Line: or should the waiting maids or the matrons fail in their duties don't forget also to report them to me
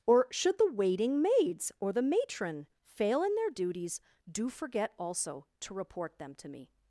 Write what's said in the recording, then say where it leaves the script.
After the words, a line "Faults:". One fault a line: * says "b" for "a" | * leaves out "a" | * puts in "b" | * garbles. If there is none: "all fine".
or should the waiting maids or the matron fail in their duties do forget also to report them to me
Faults:
* says "matron" for "matrons"
* says "do" for "don't"